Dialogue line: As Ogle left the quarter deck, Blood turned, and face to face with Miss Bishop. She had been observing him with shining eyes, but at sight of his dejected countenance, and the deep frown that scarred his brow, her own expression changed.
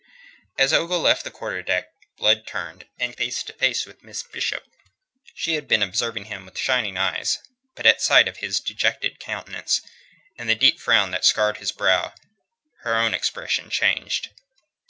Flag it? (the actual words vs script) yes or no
no